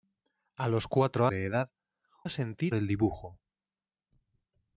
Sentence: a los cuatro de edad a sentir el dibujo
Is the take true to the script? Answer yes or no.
yes